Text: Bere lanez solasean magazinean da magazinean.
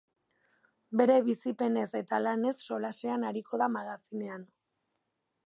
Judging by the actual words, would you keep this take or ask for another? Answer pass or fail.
fail